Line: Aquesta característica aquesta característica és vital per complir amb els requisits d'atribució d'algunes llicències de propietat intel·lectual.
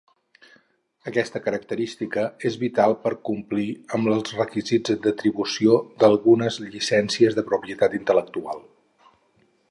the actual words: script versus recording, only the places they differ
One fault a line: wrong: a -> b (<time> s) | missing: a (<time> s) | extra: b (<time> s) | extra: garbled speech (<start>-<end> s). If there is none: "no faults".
missing: aquesta característica (2.2 s)